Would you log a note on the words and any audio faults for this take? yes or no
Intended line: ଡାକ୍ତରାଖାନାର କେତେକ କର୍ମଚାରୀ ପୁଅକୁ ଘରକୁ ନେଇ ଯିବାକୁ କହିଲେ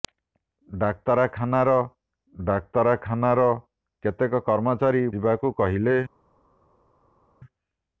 yes